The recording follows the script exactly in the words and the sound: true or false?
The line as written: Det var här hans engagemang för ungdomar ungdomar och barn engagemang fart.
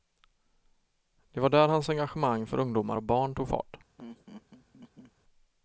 false